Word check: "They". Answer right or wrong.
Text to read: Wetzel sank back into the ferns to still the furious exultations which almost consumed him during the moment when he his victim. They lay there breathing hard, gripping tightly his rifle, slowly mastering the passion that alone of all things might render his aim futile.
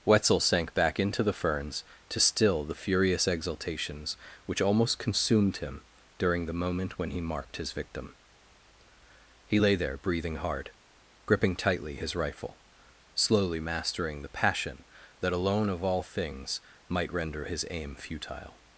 wrong